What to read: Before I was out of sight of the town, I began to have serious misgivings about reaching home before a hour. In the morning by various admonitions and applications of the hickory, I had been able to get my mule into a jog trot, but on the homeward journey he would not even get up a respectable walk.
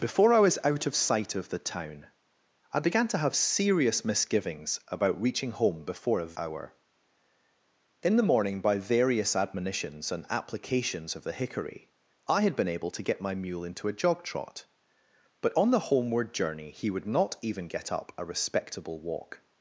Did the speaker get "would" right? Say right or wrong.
right